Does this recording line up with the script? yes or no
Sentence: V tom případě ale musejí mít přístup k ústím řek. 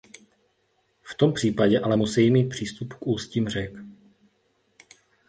yes